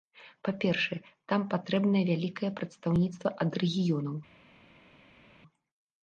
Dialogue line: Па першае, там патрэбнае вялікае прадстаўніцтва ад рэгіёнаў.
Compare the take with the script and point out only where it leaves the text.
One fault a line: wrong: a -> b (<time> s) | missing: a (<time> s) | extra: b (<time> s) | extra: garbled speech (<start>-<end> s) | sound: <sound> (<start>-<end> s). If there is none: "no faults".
no faults